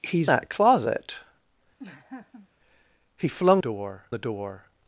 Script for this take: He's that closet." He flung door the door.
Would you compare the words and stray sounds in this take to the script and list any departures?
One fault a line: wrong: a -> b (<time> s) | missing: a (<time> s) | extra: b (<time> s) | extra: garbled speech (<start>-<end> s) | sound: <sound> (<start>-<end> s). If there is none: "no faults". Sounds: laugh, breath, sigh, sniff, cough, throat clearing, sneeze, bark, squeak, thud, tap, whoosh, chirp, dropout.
sound: laugh (1.8-2.5 s)